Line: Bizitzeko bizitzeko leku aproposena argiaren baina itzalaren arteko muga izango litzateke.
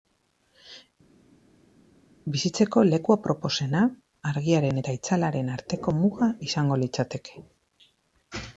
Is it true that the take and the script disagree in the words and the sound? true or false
true